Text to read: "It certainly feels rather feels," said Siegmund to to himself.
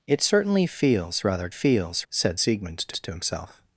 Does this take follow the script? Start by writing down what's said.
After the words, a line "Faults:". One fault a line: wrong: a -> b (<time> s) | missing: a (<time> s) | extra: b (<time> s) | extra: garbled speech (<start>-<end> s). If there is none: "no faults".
"It certainly feels rather feels," said Siegmund to to himself.
Faults:
no faults